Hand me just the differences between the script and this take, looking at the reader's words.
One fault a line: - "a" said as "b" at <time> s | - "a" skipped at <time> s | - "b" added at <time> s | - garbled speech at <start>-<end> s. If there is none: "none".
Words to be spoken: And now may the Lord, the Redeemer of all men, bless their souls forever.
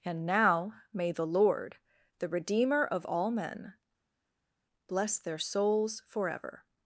none